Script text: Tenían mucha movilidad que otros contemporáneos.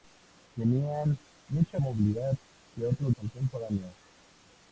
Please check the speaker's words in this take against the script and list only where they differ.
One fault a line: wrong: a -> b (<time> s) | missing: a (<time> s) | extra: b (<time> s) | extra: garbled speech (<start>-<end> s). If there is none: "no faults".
no faults